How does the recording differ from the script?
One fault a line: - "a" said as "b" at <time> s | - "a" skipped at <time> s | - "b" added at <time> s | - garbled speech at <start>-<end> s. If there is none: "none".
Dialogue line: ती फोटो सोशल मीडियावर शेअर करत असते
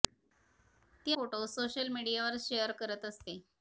none